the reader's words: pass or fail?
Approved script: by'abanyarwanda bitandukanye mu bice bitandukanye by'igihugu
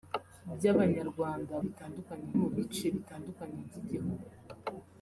pass